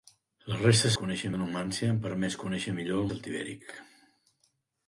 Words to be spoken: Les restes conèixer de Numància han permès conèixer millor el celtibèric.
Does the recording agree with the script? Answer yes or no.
yes